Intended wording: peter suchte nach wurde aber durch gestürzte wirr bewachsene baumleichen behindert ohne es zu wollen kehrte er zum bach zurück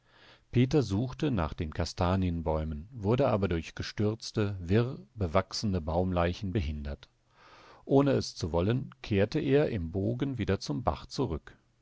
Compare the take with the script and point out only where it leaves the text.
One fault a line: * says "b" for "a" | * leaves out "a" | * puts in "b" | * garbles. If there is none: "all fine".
* puts in "den kastanienbäumen"
* puts in "im bogen wieder"